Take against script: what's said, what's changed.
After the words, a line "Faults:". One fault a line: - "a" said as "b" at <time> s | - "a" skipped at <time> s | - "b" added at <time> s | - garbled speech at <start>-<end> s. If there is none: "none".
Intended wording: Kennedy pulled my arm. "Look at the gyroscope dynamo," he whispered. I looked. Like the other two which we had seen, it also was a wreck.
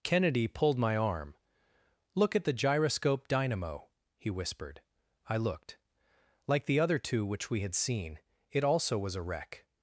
Kennedy pulled my arm. "Look at the gyroscope dynamo," he whispered. I looked. Like the other two which we had seen, it also was a wreck.
Faults:
none